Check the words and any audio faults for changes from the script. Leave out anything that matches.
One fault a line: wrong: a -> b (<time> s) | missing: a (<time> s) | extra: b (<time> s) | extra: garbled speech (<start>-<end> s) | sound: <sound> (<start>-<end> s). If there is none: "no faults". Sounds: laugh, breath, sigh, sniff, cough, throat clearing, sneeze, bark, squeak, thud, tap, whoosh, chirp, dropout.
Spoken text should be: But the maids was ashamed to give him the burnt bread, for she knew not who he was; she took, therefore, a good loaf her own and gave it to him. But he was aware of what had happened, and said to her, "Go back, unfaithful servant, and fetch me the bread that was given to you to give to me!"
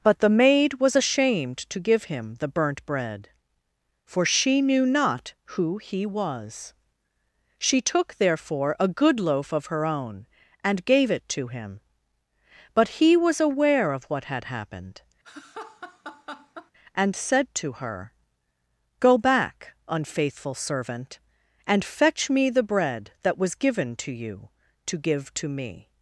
wrong: maids -> maid (0.3 s)
extra: of (9.5 s)
sound: laugh (15.2-16.7 s)